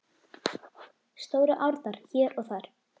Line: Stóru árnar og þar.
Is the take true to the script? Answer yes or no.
no